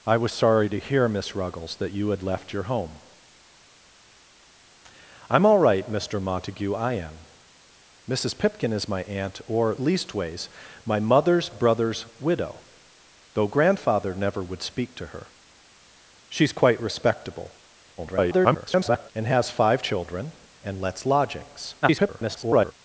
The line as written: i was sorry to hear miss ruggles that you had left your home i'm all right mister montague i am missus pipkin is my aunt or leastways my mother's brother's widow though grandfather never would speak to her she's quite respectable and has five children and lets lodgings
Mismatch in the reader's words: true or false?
true